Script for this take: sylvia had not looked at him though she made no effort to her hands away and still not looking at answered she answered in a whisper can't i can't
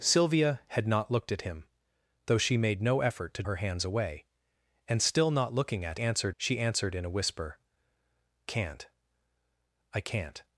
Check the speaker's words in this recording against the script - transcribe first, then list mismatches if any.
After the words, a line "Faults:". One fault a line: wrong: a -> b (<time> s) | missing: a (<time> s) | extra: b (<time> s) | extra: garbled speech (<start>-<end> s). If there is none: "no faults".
sylvia had not looked at him though she made no effort to her hands away and still not looking at answered she answered in a whisper can't i can't
Faults:
no faults